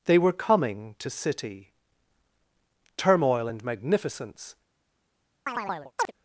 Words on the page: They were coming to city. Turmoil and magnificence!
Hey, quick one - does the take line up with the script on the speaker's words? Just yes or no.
yes